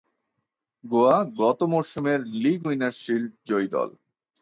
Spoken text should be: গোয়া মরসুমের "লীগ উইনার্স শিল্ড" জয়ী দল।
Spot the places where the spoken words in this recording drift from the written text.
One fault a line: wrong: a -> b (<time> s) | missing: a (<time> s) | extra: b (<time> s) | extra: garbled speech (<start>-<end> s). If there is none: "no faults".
extra: গত (1.4 s)